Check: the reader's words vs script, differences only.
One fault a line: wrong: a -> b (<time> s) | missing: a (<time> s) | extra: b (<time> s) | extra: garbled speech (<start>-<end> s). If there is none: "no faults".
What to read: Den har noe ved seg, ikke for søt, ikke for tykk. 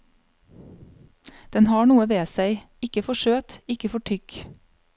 no faults